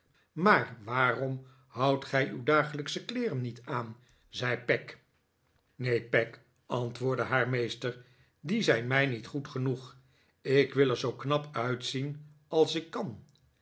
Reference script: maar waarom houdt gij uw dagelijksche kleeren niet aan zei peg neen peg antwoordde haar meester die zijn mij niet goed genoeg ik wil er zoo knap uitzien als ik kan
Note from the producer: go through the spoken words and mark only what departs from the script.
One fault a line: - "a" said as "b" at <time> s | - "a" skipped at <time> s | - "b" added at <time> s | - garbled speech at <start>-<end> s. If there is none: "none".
none